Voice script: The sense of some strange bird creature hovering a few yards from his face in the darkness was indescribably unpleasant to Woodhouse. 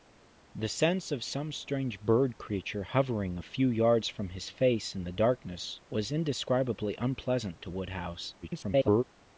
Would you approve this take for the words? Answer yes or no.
no